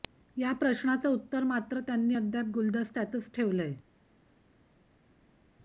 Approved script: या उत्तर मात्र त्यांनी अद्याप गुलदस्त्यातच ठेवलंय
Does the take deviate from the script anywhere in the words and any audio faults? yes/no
yes